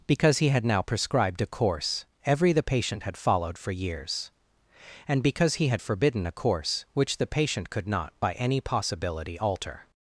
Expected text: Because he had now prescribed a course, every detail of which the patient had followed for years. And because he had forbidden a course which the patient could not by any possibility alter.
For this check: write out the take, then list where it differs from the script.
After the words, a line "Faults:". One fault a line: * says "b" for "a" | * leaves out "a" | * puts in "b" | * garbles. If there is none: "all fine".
Because he had now prescribed a course, every the patient had followed for years. And because he had forbidden a course which the patient could not by any possibility alter.
Faults:
* leaves out "detail of which"